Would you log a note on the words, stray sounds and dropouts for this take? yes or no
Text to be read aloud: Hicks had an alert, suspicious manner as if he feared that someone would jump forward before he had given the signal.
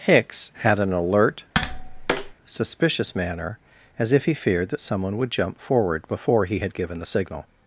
yes